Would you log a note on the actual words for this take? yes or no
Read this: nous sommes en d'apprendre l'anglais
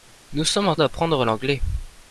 no